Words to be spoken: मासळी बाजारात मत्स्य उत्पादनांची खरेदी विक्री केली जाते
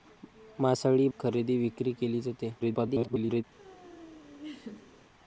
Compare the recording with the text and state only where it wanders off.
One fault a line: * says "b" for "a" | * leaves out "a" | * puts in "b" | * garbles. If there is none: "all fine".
* leaves out "बाजारात मत्स्य उत्पादनांची"
* garbles